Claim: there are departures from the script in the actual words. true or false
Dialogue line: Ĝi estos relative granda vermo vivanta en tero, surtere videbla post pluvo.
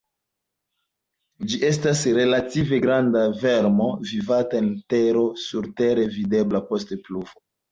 true